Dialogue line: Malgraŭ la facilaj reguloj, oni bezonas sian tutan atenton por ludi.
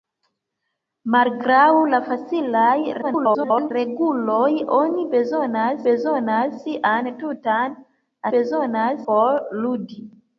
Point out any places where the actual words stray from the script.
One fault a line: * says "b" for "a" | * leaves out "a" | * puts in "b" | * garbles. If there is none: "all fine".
* garbles
* puts in "bezonas"
* says "bezonas" for "atenton"